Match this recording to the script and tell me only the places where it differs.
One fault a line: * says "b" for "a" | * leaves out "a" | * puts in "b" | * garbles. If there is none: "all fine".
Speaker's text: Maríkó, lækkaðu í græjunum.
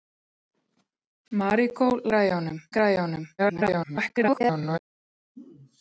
* says "græjunum" for "lækkaðu"
* garbles